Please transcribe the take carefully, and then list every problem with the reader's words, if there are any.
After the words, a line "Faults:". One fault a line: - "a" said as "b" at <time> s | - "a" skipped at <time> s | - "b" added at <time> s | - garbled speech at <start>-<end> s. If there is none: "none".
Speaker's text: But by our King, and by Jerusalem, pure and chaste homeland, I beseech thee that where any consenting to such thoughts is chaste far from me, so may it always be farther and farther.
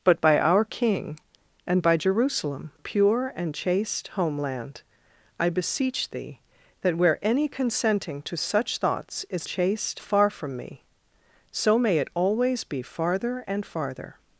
But by our King, and by Jerusalem, pure and chaste homeland, I beseech thee that where any consenting to such thoughts is chaste far from me, so may it always be farther and farther.
Faults:
none